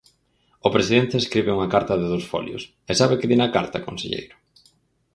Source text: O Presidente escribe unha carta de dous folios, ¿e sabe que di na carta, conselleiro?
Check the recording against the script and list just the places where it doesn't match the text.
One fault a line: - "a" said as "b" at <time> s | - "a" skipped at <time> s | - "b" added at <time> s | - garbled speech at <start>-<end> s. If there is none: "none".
none